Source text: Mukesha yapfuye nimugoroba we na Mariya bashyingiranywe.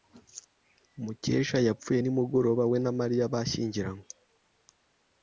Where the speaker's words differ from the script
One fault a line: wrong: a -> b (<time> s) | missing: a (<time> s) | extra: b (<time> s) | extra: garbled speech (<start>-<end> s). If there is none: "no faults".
no faults